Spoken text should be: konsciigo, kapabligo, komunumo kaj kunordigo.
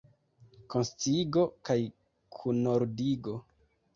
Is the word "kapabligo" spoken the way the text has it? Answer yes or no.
no